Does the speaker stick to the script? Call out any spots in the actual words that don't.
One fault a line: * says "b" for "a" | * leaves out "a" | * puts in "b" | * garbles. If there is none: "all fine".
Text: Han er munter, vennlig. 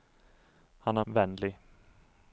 * leaves out "munter"